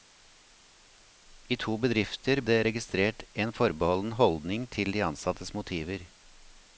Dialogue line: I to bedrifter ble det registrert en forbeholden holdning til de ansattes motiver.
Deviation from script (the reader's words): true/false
true